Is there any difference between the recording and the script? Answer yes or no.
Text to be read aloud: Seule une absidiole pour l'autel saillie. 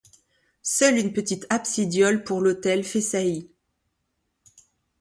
yes